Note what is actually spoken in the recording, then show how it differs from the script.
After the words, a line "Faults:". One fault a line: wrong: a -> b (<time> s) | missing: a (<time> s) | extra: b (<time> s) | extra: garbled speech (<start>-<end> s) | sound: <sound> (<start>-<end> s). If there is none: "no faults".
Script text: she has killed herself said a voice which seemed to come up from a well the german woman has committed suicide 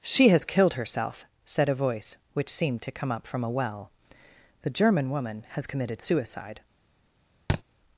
she has killed herself said a voice which seemed to come up from a well the german woman has committed suicide
Faults:
sound: thud (7.5-7.6 s)